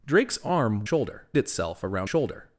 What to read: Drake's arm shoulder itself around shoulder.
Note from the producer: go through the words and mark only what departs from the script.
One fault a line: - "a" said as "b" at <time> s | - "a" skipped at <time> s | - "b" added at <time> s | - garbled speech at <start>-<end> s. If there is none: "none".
none